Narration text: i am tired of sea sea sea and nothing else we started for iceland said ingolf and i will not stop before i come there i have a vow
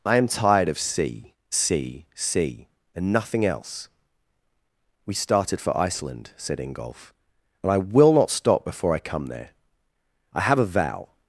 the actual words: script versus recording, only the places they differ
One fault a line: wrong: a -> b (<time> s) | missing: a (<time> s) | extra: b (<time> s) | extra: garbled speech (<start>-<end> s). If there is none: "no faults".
no faults